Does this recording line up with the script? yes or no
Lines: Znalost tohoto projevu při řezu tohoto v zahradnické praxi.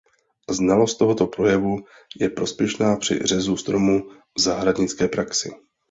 no